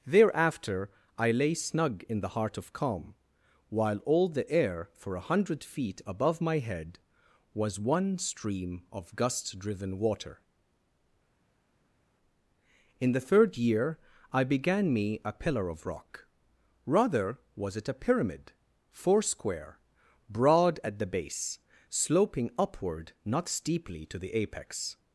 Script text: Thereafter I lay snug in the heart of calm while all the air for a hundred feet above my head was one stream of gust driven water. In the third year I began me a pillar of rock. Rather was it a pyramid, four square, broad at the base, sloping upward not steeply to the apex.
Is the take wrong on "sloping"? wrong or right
right